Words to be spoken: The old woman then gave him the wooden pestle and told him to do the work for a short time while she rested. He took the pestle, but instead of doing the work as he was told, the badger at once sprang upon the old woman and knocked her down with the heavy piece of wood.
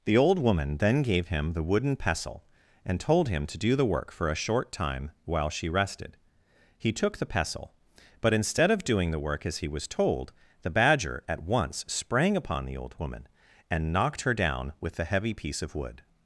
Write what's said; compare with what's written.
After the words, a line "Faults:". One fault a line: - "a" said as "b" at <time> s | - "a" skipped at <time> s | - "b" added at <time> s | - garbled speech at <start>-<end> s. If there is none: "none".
The old woman then gave him the wooden pestle and told him to do the work for a short time while she rested. He took the pestle, but instead of doing the work as he was told, the badger at once sprang upon the old woman and knocked her down with the heavy piece of wood.
Faults:
none